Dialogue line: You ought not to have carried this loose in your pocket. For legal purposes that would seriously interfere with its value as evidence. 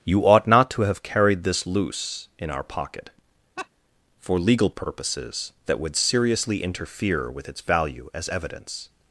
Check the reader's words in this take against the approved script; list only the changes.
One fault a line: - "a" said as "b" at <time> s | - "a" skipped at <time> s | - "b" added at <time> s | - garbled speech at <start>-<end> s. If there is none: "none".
- "your" said as "our" at 2.5 s